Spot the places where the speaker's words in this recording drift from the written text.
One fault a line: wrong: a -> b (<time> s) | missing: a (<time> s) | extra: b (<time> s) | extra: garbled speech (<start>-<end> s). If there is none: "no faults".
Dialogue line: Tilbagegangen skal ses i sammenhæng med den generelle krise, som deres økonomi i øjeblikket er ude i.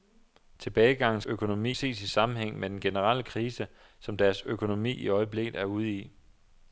wrong: skal -> økonomi (1.2 s)